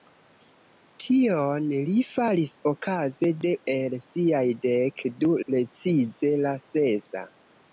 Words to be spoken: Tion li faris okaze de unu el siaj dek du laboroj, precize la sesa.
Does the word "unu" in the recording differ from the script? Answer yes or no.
yes